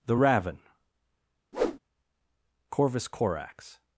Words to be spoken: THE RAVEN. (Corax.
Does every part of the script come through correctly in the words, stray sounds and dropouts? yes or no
no